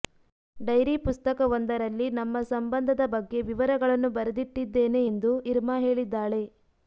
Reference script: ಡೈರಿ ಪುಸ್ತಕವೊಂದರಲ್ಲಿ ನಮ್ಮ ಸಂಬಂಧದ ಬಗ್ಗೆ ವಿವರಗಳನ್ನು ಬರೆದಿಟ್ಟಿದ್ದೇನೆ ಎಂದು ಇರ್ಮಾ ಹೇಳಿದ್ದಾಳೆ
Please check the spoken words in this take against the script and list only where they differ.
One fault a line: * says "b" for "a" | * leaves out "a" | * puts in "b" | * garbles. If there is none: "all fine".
all fine